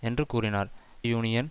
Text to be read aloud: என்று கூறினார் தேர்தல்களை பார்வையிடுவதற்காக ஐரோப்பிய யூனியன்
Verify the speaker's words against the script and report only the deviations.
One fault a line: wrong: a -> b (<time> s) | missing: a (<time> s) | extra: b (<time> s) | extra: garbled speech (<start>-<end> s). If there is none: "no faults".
missing: தேர்தல்களை பார்வையிடுவதற்காக ஐரோப்பிய (0.7 s)